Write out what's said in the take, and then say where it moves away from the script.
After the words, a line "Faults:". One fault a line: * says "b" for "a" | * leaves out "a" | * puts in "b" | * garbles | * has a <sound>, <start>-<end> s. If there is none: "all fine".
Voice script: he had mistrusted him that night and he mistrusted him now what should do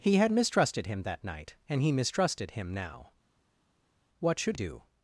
he had mistrusted him that night and he mistrusted him now what should do
Faults:
all fine